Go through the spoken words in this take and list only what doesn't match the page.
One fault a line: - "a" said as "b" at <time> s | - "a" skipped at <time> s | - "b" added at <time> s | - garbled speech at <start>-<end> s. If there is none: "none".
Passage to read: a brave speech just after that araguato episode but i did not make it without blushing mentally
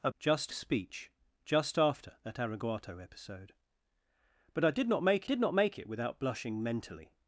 - "brave" said as "just" at 0.2 s
- "did not make" added at 5.2 s